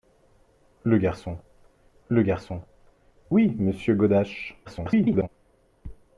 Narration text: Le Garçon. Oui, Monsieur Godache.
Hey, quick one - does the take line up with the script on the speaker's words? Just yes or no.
no